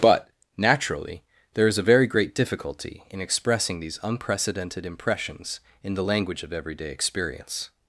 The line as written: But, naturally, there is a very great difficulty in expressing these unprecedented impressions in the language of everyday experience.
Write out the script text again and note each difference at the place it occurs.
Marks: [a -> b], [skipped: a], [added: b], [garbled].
But, naturally, there is a very great difficulty in expressing these unprecedented impressions in the language of everyday experience.